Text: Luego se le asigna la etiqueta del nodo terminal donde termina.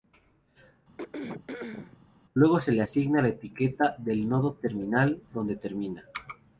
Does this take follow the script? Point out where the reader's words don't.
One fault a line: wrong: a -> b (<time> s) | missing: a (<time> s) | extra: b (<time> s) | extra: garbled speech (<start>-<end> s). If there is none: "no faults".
no faults